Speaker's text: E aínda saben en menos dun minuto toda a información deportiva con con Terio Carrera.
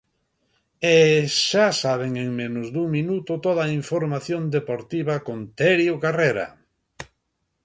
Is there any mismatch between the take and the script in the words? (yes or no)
yes